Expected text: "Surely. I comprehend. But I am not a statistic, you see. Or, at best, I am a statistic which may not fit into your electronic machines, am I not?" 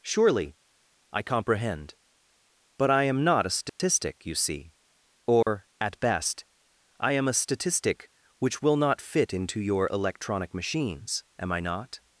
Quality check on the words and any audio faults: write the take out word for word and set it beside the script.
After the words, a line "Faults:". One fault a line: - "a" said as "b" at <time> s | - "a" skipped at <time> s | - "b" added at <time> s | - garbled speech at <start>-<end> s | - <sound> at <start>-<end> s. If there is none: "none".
"Surely. I comprehend. But I am not a statistic, you see. Or, at best, I am a statistic which will not fit into your electronic machines, am I not?"
Faults:
- dropout at 3.7-3.8 s
- dropout at 5.4-5.5 s
- "may" said as "will" at 8.6 s